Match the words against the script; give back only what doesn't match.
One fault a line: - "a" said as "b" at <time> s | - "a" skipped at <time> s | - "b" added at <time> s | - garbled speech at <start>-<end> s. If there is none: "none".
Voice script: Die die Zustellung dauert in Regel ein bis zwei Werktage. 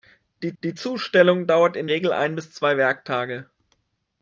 none